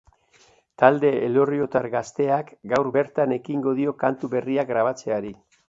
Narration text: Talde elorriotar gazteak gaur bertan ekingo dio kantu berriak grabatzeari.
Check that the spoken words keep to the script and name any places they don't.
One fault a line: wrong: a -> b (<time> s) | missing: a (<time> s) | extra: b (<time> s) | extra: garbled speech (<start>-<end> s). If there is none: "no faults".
no faults